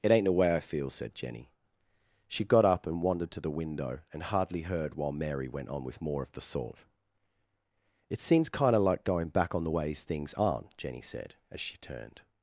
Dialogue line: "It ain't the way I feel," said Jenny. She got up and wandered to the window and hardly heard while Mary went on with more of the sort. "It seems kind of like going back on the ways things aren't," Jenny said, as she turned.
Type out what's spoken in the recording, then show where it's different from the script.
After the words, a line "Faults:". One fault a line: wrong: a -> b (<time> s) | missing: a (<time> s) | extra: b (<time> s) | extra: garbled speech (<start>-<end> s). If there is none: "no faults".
"It ain't the way I feel," said Jenny. She got up and wandered to the window and hardly heard while Mary went on with more of the sort. "It seems kind of like going back on the ways things aren't," Jenny said, as she turned.
Faults:
no faults